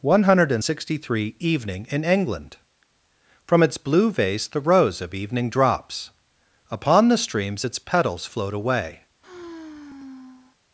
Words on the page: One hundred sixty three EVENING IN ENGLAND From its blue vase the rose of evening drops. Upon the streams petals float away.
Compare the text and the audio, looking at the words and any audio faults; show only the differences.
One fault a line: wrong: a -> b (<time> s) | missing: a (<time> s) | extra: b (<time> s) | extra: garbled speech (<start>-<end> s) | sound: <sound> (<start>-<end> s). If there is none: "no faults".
extra: its (7.6 s)
sound: sigh (9.2-10.6 s)